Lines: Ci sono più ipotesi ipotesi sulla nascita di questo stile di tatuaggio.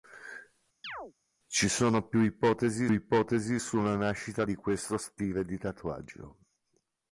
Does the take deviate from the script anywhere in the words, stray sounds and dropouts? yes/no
yes